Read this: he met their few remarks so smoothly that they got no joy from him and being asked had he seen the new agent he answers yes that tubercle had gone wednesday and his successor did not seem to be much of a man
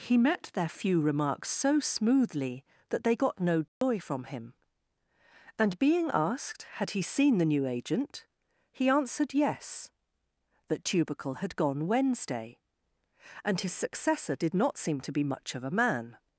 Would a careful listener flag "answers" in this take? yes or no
yes